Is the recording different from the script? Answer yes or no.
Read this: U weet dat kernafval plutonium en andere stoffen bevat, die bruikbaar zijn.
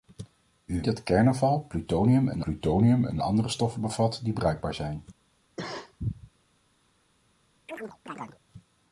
yes